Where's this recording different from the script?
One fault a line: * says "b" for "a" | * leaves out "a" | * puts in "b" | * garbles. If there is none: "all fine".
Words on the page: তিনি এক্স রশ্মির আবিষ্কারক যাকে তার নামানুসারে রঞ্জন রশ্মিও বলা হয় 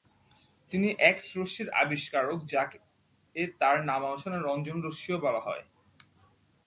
all fine